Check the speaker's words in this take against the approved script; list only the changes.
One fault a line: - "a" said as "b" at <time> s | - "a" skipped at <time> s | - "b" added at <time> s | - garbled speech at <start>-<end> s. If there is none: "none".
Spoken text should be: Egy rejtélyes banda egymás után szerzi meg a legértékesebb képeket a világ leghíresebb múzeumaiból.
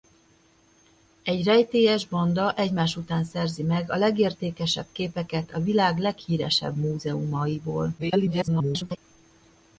- garbled speech at 8.0-9.0 s